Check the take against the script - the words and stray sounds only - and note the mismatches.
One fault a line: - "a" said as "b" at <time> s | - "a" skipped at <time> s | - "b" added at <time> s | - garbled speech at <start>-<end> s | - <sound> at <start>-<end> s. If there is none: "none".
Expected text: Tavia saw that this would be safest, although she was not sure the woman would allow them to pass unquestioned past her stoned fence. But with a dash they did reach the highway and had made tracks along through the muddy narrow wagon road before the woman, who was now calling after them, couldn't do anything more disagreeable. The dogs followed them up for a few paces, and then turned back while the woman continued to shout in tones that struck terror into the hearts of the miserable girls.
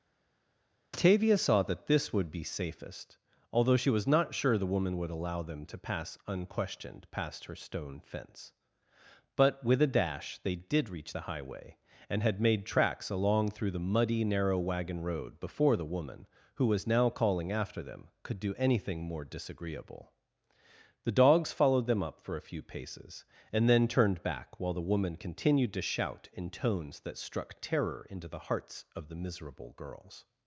- "stoned" said as "stone" at 7.5 s
- "couldn't" said as "could" at 18.2 s